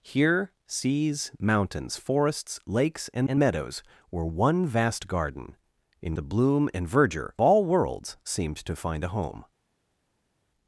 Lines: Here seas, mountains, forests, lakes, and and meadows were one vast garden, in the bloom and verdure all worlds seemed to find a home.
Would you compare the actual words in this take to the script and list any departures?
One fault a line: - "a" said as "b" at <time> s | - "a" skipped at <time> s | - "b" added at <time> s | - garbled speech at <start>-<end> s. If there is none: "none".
none